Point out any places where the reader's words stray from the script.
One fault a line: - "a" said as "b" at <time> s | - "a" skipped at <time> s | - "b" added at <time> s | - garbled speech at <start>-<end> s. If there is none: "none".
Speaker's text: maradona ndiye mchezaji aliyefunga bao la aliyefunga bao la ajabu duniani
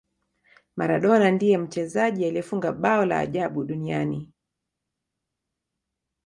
- "aliyefunga bao la" skipped at 3.2 s